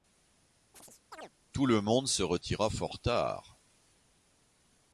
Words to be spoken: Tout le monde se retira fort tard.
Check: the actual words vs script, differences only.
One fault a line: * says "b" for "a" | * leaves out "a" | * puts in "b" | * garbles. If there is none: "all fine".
all fine